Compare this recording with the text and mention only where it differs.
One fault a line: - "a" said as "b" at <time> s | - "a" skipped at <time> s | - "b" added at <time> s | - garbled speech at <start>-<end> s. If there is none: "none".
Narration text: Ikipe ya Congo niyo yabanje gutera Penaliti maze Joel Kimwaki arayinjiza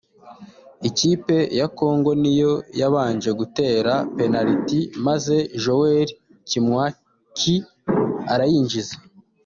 none